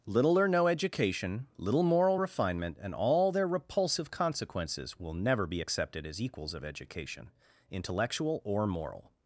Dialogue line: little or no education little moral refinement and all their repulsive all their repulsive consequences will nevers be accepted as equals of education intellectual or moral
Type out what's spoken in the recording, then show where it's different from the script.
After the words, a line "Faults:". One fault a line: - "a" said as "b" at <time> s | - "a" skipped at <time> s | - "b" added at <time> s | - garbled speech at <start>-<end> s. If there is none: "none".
little or no education little moral refinement and all their repulsive consequences will never be accepted as equals of education intellectual or moral
Faults:
- "all their repulsive" skipped at 4.1 s
- "nevers" said as "never" at 5.1 s